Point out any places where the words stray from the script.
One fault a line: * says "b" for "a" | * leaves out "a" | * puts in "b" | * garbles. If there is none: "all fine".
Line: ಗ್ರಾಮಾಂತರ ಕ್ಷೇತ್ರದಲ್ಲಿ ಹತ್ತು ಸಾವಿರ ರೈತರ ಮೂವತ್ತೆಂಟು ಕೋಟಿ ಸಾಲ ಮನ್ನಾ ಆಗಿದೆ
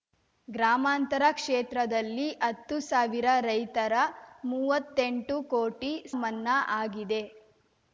* leaves out "ಸಾಲ"